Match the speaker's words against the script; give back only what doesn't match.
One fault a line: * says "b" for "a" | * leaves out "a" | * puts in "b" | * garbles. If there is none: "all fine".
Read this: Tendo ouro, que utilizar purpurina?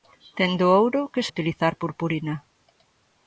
all fine